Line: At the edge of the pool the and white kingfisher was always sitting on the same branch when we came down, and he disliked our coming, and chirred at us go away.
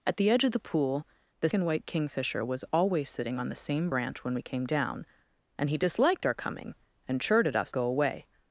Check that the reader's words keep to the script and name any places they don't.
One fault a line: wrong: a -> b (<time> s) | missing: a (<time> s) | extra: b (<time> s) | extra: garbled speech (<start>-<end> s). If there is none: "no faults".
no faults